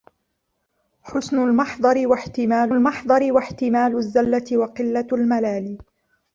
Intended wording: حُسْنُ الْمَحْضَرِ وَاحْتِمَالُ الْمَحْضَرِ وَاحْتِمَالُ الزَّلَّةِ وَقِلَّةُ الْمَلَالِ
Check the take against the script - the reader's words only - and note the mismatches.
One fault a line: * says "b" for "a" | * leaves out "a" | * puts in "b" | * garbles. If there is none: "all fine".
all fine